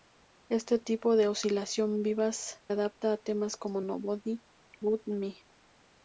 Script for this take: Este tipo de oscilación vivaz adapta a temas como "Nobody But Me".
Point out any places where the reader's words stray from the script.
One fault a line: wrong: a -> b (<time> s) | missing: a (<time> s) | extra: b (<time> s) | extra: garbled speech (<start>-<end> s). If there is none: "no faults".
no faults